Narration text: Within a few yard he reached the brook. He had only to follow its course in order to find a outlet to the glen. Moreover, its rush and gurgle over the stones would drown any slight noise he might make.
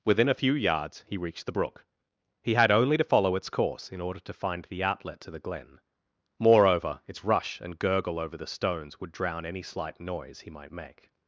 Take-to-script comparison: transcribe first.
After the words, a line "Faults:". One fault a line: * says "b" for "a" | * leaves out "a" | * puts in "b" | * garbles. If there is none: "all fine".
Within a few yards he reached the brook. He had only to follow its course in order to find the outlet to the glen. Moreover, its rush and gurgle over the stones would drown any slight noise he might make.
Faults:
* says "yards" for "yard"
* says "the" for "a"